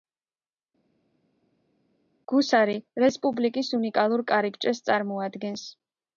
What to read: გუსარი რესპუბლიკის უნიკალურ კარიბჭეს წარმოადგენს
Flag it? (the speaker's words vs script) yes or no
no